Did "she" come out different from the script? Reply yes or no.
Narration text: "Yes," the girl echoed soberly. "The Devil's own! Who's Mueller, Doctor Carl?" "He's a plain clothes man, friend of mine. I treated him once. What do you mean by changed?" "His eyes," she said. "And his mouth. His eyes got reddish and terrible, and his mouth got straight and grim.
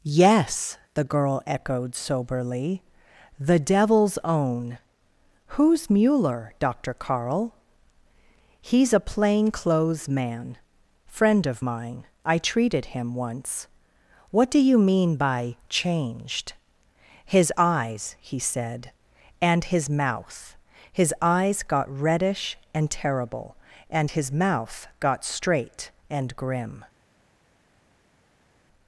yes